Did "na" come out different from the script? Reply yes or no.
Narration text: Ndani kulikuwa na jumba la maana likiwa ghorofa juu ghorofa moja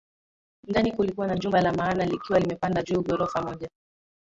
no